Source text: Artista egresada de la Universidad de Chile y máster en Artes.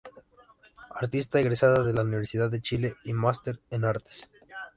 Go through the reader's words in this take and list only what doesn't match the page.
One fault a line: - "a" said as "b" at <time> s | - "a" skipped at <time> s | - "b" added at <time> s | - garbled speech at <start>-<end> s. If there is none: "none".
none